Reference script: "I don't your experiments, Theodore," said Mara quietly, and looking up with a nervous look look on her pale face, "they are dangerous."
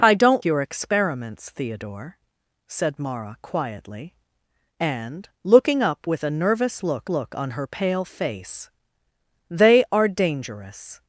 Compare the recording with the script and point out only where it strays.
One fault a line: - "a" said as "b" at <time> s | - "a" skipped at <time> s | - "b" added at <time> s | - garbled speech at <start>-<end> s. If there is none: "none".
none